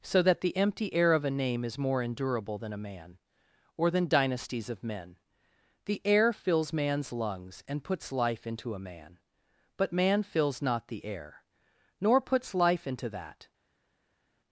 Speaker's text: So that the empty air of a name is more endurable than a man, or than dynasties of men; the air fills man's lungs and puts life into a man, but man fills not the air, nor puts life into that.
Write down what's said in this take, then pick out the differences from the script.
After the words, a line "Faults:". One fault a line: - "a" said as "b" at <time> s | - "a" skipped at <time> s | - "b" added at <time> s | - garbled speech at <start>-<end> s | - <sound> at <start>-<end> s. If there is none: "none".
So that the empty air of a name is more endurable than a man, or than dynasties of men; the air fills man's lungs and puts life into a man, but man fills not the air, nor puts life into that.
Faults:
none